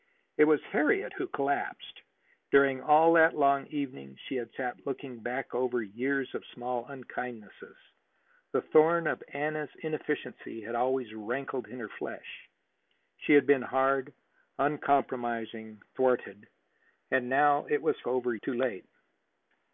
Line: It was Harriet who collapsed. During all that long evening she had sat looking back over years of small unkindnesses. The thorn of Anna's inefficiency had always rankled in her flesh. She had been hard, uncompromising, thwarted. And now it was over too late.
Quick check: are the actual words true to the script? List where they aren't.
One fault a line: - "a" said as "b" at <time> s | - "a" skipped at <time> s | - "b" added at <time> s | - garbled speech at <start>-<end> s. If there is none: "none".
none